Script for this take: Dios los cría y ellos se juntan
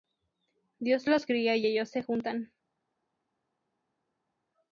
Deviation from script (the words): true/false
false